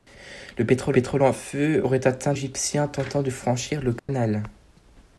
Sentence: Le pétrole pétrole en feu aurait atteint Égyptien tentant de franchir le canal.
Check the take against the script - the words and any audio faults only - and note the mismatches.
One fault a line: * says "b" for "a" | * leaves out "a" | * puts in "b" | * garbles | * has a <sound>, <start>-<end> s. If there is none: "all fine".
* has a dropout, 4.0-4.1 s